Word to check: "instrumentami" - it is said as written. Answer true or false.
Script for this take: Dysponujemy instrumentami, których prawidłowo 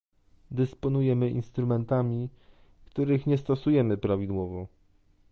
true